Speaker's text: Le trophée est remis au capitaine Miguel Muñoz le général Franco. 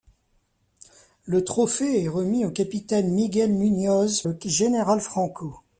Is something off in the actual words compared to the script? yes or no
no